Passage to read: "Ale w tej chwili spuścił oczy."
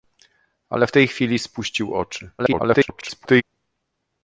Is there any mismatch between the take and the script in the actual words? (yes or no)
yes